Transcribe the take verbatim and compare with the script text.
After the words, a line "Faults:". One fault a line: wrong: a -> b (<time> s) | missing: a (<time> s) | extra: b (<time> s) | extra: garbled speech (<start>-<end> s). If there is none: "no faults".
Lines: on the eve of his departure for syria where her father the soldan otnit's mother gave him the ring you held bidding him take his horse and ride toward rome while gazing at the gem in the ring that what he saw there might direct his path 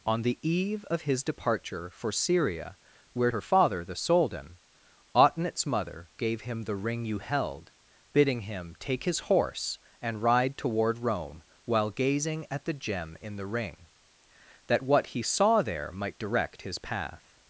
on the eve of his departure for syria where her father the soldan otnit's mother gave him the ring you held bidding him take his horse and ride toward rome while gazing at the gem in the ring that what he saw there might direct his path
Faults:
no faults